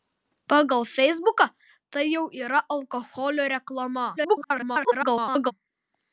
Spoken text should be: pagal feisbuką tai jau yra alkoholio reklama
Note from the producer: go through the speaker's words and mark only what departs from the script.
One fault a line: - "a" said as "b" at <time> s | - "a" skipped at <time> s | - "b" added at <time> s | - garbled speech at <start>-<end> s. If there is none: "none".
- garbled speech at 4.2-5.5 s